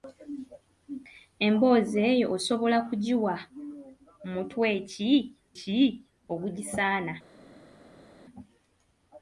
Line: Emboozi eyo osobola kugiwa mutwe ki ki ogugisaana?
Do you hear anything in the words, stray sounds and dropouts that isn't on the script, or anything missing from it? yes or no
no